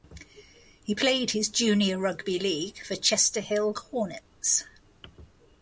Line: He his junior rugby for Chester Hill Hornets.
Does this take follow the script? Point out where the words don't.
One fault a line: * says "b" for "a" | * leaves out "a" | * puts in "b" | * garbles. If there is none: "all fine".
* puts in "played"
* puts in "league"